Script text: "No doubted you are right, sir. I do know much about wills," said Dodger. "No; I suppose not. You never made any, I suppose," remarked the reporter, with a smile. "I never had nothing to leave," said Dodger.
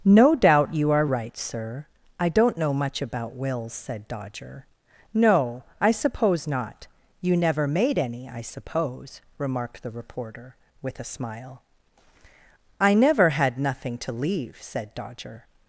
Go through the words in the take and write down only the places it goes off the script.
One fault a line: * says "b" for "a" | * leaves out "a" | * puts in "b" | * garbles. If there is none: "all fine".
* says "doubt" for "doubted"
* says "don't" for "do"